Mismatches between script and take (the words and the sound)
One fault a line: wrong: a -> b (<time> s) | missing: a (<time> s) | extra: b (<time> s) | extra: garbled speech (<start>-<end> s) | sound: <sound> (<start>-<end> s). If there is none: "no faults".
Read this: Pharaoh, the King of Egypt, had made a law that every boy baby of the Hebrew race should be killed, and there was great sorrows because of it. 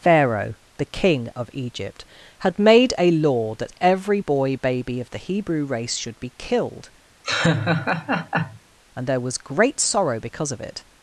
sound: laugh (7.2-8.6 s)
wrong: sorrows -> sorrow (9.8 s)